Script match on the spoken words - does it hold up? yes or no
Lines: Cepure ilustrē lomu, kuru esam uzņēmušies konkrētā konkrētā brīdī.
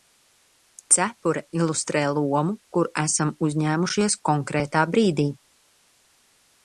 no